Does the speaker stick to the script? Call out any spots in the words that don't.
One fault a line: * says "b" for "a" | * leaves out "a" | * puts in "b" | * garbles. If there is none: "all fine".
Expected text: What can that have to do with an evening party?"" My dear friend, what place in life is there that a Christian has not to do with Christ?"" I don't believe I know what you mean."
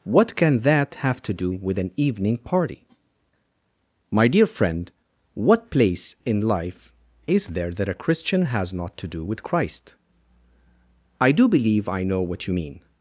* says "do" for "don't"